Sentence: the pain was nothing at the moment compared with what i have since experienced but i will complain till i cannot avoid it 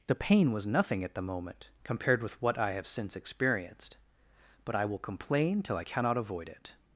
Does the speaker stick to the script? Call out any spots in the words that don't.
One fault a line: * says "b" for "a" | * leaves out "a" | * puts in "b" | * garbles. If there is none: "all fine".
all fine